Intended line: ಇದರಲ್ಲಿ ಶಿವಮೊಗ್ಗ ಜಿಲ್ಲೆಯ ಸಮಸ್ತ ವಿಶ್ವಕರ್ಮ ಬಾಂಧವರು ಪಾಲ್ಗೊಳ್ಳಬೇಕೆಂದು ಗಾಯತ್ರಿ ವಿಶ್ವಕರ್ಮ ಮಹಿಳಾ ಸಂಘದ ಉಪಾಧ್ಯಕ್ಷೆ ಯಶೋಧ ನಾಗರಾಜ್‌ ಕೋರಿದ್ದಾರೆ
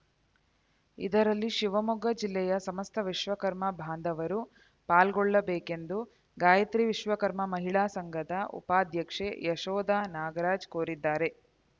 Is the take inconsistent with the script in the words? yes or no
no